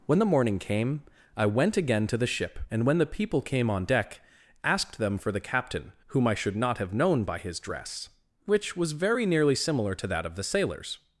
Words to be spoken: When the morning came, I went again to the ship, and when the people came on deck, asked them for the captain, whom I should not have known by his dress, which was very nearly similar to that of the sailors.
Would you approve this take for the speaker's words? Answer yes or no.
yes